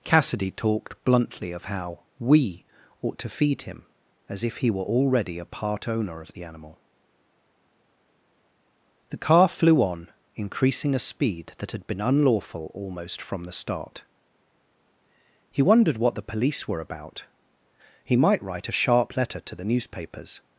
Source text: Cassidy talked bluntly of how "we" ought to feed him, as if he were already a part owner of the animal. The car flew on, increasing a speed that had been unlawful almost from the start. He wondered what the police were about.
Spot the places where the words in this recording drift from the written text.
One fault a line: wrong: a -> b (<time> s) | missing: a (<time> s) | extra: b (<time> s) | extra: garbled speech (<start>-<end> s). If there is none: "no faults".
extra: He might write a sharp letter to the newspapers (18.0 s)